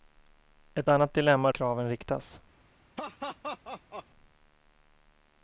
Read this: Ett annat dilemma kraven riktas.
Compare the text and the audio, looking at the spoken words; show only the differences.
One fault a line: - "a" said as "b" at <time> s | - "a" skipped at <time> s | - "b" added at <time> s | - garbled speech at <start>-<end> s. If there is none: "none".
none